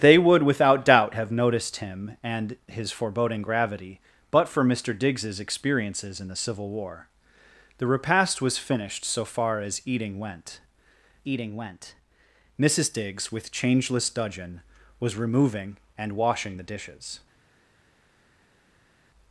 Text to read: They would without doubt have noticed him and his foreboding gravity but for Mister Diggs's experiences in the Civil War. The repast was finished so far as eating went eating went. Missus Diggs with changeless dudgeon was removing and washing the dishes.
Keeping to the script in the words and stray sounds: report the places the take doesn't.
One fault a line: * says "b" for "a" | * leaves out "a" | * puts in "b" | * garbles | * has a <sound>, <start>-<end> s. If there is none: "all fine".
all fine